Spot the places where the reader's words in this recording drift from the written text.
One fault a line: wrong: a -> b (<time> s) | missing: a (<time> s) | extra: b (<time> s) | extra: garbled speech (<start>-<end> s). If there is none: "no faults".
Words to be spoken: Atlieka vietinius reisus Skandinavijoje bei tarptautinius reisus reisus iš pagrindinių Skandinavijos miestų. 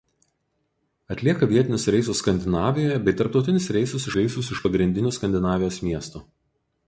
no faults